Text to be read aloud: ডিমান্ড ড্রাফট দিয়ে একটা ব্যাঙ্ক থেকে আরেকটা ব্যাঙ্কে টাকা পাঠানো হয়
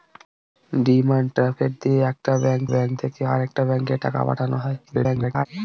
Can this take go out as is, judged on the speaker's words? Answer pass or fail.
fail